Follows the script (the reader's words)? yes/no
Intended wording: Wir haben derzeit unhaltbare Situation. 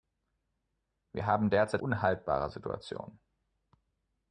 yes